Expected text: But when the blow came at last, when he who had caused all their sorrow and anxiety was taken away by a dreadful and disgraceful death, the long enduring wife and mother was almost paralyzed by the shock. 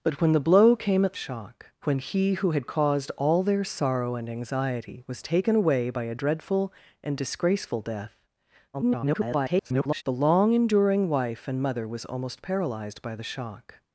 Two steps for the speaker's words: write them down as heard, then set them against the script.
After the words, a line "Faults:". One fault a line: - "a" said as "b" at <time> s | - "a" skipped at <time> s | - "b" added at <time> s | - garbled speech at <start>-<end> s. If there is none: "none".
But when the blow came at shock, when he who had caused all their sorrow and anxiety was taken away by a dreadful and disgraceful death, [garbled] the long enduring wife and mother was almost paralyzed by the shock.
Faults:
- "last" said as "shock" at 1.2 s
- garbled speech at 8.7-10.0 s